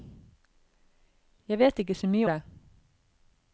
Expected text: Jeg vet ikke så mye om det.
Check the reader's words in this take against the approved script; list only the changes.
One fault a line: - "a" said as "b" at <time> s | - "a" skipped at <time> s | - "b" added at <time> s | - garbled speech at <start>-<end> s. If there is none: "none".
- "om" skipped at 2.3 s